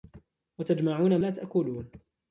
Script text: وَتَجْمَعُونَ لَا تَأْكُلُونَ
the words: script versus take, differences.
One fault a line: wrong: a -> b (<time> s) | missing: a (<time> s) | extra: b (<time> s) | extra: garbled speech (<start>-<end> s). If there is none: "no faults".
no faults